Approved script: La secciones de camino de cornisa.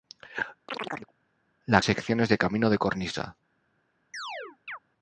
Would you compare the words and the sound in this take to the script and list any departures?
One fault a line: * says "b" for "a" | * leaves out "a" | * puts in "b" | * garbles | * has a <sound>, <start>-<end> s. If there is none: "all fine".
* has a chirp, 0.7-1.1 s
* has a chirp, 4.1-4.8 s